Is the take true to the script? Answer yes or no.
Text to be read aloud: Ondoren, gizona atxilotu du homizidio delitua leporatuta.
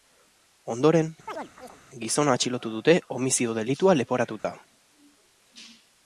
no